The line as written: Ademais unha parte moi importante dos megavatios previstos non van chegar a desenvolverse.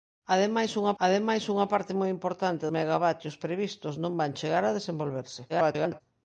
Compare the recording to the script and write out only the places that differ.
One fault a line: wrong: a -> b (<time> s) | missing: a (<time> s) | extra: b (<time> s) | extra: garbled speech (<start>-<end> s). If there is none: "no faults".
extra: ademais unha (1.0 s)
missing: dos (2.6 s)
extra: garbled speech (5.5-6.0 s)